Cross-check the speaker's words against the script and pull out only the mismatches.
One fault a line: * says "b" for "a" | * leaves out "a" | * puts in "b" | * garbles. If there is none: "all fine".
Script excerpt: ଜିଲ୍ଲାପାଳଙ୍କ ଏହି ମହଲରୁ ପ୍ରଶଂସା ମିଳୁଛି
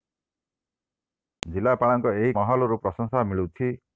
all fine